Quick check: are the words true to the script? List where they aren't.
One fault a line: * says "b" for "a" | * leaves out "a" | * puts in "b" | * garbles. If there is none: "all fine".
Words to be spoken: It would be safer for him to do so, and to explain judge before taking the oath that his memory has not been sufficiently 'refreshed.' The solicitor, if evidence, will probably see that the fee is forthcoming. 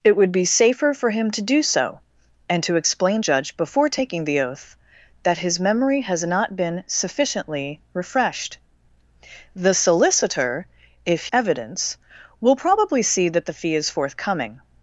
all fine